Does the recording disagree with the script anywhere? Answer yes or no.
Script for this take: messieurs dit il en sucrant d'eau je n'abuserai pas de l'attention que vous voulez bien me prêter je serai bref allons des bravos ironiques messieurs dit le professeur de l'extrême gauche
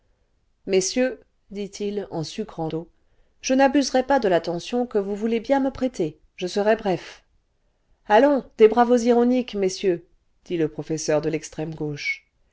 no